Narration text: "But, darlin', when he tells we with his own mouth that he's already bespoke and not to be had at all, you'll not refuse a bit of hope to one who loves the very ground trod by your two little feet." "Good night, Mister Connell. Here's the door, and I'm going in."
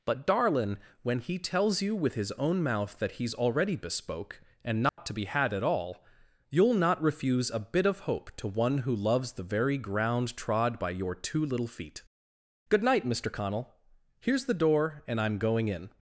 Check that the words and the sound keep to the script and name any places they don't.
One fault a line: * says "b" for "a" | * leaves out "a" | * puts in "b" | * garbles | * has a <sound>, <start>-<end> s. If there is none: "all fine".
* says "you" for "we"
* has a dropout, 4.9-5.0 s